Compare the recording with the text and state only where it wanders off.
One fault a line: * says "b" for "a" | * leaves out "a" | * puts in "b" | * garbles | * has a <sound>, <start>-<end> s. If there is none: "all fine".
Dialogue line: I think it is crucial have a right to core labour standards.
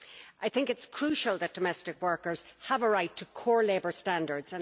* puts in "that domestic workers"